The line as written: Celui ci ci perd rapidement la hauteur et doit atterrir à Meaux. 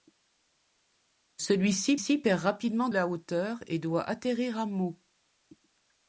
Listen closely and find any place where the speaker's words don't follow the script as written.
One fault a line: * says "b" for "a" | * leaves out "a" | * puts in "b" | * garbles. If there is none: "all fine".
all fine